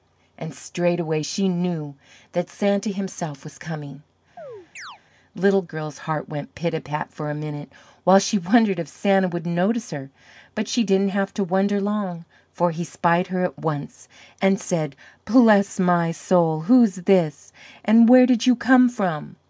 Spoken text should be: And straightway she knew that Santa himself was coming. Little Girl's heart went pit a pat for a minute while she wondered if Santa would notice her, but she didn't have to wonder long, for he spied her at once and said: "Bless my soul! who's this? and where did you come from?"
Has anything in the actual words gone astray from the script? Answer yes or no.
no